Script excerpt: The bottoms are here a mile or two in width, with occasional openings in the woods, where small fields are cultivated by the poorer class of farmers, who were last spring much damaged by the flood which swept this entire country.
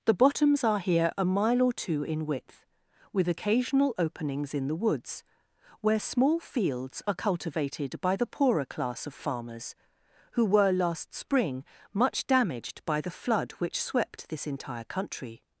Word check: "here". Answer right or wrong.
right